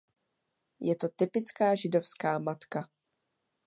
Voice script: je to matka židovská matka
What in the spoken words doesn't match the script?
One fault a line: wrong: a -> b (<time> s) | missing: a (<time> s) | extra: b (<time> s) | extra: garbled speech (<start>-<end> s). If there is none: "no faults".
wrong: matka -> typická (1.1 s)